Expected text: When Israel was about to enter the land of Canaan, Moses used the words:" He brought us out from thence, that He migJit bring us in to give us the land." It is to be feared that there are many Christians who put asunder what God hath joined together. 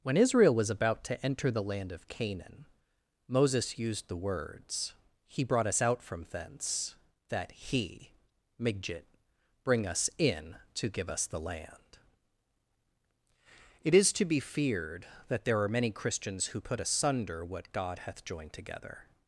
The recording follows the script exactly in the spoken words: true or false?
true